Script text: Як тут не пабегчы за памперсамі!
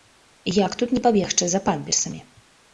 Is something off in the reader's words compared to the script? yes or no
no